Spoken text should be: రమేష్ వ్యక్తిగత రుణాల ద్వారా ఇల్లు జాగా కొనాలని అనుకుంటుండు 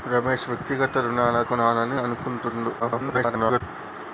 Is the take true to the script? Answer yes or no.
no